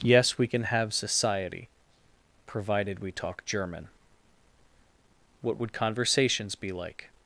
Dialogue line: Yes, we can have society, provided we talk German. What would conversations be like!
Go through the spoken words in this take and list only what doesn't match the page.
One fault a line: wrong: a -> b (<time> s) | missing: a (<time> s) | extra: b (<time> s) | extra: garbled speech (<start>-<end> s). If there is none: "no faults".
no faults